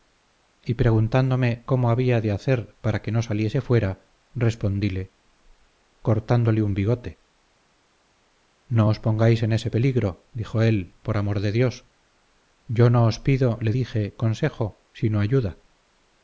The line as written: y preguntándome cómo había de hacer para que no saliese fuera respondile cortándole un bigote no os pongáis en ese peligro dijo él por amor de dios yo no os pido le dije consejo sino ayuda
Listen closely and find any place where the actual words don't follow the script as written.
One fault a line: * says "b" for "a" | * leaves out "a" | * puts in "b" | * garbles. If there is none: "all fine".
all fine